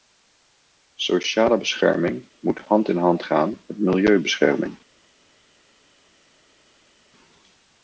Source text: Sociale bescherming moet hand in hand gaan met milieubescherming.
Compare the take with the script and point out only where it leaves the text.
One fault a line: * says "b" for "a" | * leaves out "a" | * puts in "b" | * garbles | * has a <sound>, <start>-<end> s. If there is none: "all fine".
all fine